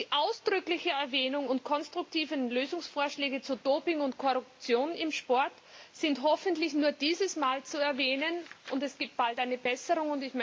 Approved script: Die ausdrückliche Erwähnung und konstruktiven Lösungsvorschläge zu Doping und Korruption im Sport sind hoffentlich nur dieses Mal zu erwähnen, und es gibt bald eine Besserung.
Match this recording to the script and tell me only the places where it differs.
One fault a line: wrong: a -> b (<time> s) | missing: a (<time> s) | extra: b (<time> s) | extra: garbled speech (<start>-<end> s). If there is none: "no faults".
no faults